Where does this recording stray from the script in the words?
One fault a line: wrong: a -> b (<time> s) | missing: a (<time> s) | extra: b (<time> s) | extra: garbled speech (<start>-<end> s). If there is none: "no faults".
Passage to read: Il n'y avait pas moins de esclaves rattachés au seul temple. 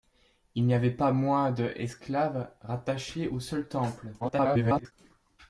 extra: garbled speech (4.2-4.9 s)